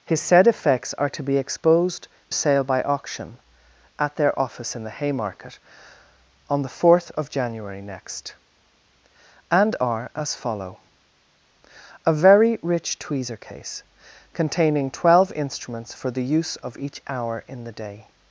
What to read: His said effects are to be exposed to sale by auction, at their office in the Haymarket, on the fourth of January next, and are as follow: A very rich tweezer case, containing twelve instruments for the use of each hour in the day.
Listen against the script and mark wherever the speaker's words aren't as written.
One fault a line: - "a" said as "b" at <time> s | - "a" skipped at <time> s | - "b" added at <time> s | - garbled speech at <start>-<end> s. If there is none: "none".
- "to" skipped at 2.1 s